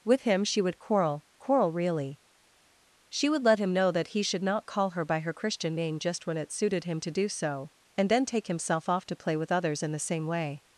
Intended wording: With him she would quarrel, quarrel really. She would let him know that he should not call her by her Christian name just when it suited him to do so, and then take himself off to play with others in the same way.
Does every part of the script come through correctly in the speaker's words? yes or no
yes